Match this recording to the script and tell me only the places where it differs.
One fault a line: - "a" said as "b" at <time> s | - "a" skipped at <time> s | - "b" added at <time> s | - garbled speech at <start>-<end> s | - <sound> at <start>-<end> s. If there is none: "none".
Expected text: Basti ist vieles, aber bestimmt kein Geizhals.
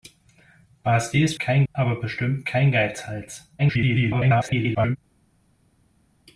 - "vieles" said as "kein" at 1.4 s
- garbled speech at 3.6-5.0 s